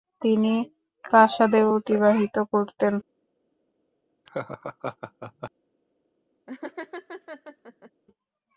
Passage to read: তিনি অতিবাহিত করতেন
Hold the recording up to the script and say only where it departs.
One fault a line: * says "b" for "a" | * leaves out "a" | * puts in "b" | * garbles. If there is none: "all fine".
* puts in "প্রাসাদে"